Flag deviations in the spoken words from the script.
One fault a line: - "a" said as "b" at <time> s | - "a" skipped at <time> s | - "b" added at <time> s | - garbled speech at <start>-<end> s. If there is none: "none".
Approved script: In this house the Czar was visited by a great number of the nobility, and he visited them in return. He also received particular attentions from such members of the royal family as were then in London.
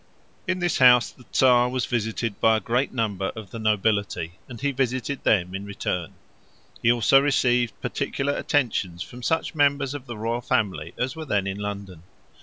none